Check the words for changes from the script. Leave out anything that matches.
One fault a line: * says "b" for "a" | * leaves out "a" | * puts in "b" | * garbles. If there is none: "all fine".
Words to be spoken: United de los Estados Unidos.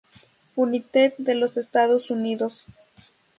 all fine